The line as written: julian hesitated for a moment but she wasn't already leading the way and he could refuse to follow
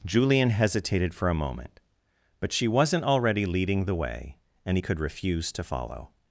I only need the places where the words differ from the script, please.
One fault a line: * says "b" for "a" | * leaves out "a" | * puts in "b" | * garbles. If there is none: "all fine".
all fine